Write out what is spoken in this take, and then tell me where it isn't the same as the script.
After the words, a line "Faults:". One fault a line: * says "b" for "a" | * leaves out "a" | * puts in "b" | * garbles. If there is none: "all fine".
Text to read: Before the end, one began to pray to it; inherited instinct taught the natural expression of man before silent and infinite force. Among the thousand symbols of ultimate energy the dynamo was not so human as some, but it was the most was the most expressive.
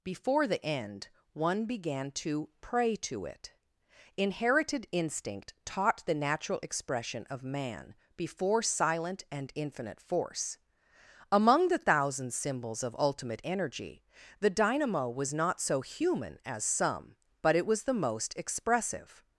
Before the end, one began to pray to it; inherited instinct taught the natural expression of man before silent and infinite force. Among the thousand symbols of ultimate energy the dynamo was not so human as some, but it was the most expressive.
Faults:
* leaves out "was the most"